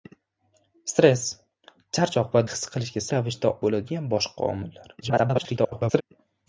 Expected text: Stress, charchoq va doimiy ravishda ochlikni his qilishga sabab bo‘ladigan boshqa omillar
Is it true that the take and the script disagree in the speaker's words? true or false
true